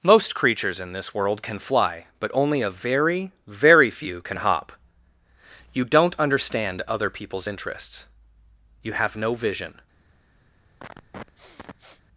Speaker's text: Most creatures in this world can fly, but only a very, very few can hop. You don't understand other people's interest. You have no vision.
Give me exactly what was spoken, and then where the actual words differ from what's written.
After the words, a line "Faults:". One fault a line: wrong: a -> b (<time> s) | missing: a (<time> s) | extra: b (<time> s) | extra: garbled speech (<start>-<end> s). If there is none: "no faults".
Most creatures in this world can fly, but only a very, very few can hop. You don't understand other people's interests. You have no vision.
Faults:
wrong: interest -> interests (7.5 s)